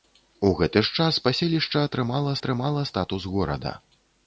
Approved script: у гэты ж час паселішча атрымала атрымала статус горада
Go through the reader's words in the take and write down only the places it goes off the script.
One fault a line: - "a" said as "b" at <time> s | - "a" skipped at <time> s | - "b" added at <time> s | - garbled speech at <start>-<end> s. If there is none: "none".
none